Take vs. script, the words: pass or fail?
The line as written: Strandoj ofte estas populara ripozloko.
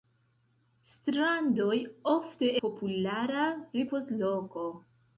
fail